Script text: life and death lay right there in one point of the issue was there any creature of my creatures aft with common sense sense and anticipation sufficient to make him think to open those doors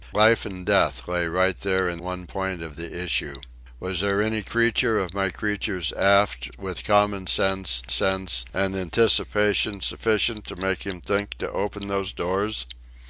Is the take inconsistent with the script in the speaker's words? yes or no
no